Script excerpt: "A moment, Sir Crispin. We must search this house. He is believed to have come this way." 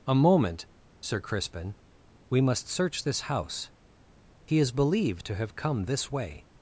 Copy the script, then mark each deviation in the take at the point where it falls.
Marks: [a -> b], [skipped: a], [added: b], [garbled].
"A moment, Sir Crispin. We must search this house. He is believed to have come this way."